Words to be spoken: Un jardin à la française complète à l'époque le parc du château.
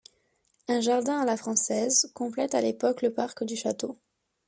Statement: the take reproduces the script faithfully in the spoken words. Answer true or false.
true